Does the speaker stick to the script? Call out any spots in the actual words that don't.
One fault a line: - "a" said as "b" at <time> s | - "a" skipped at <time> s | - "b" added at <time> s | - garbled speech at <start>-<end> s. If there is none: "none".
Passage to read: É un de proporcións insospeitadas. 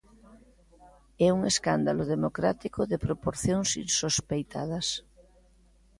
- "escándalo democrático" added at 1.5 s